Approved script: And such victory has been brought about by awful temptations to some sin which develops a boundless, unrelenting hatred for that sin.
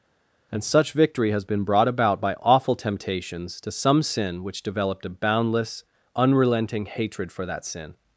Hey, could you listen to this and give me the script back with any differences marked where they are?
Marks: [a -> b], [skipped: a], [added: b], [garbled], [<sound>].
And such victory has been brought about by awful temptations to some sin which [develops -> developed] a boundless, unrelenting hatred for that sin.